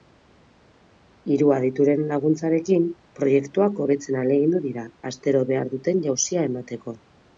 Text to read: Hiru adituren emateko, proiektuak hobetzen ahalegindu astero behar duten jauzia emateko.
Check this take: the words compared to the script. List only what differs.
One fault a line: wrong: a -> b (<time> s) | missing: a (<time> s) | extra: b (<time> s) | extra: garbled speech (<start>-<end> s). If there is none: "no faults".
wrong: emateko -> laguntzarekin (2.1 s)
extra: dira (4.7 s)